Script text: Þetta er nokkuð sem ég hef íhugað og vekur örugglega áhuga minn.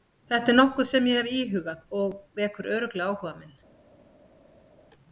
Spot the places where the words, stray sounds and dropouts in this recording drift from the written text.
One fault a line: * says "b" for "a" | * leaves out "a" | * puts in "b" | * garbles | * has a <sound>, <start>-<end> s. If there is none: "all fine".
all fine